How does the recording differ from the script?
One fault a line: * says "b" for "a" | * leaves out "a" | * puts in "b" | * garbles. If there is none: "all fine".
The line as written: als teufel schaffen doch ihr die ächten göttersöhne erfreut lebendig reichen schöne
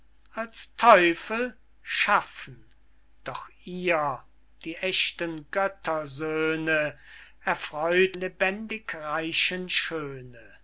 all fine